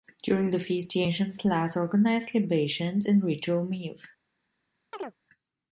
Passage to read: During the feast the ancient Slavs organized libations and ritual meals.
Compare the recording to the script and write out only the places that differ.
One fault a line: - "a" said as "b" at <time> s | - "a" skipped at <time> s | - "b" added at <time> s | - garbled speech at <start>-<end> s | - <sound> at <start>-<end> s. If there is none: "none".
- chirp at 4.9-5.1 s